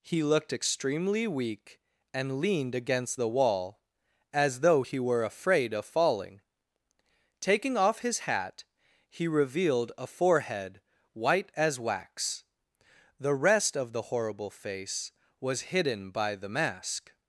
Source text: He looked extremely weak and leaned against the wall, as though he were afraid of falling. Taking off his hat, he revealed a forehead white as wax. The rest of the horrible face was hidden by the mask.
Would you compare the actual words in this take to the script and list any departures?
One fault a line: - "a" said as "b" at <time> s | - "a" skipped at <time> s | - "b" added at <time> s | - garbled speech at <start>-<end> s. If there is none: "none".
none